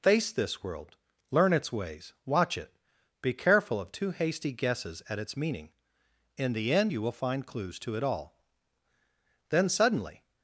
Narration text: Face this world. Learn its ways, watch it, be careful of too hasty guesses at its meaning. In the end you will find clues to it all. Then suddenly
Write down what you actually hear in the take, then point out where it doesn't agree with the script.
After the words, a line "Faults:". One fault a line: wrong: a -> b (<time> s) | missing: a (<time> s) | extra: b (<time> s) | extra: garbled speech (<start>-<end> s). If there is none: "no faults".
Face this world. Learn its ways, watch it, be careful of too hasty guesses at its meaning. In the end you will find clues to it all. Then suddenly
Faults:
no faults